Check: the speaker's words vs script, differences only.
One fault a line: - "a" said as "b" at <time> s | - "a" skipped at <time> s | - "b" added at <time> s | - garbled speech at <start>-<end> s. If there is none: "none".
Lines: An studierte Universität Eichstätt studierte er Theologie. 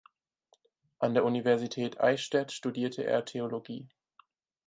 - "studierte" said as "der" at 1.1 s